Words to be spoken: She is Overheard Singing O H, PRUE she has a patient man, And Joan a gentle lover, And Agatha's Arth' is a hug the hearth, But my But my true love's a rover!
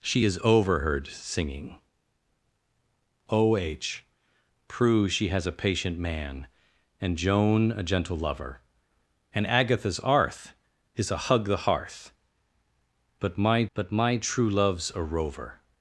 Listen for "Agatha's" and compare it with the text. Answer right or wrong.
right